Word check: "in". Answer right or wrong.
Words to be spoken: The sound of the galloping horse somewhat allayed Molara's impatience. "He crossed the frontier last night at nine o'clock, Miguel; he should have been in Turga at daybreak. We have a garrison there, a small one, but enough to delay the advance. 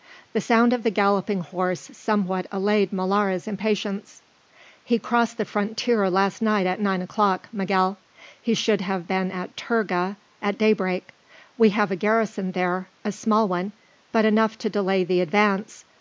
wrong